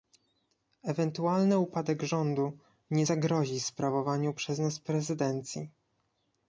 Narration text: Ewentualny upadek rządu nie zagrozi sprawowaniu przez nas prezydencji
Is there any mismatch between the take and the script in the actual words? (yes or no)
no